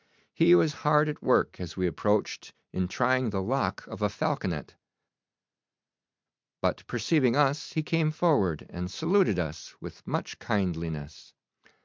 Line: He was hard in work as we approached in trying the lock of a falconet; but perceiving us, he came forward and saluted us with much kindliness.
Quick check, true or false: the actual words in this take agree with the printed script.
false